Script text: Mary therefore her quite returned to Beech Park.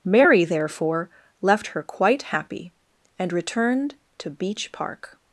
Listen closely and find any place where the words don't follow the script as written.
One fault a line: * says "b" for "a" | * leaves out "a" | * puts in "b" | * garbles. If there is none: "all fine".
* puts in "left"
* puts in "happy and"